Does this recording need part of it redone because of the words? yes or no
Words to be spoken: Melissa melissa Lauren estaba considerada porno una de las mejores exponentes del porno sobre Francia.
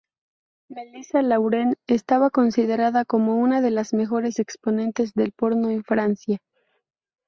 yes